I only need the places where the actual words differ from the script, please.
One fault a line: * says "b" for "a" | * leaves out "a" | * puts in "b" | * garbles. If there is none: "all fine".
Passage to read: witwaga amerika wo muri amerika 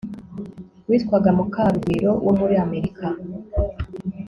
* says "mukarugwiro" for "amerika"